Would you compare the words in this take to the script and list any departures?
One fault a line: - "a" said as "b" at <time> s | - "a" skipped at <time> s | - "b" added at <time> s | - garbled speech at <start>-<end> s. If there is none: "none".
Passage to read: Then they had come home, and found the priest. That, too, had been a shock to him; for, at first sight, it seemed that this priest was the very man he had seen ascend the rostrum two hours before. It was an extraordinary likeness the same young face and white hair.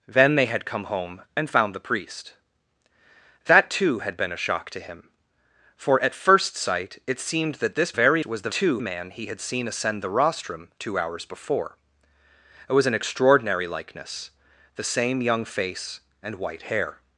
- "priest" said as "very" at 8.0 s
- "very" said as "too" at 8.5 s